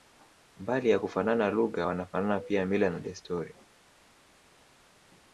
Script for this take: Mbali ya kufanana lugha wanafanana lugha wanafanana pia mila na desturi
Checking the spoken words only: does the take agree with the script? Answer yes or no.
no